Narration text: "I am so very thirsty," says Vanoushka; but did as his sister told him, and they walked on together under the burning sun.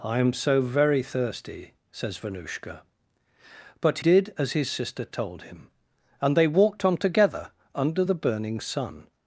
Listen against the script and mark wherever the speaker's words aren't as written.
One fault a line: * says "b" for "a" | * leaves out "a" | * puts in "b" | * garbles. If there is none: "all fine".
all fine